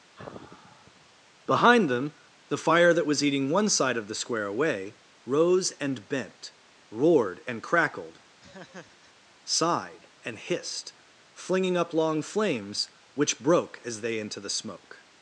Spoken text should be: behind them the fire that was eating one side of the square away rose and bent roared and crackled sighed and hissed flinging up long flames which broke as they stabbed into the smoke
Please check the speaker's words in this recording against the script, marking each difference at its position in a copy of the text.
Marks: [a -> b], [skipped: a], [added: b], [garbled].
behind them the fire that was eating one side of the square away rose and bent roared and crackled sighed and hissed flinging up long flames which broke as they [skipped: stabbed] into the smoke